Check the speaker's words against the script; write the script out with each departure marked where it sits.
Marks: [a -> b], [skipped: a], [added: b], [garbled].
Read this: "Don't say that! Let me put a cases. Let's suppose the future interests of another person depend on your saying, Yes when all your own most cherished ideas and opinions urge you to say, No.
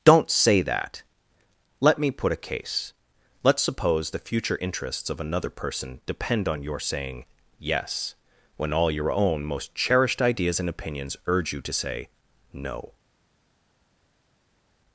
"Don't say that! Let me put a [cases. -> case] Let's suppose the future interests of another person depend on your saying, Yes when all your own most cherished ideas and opinions urge you to say, No.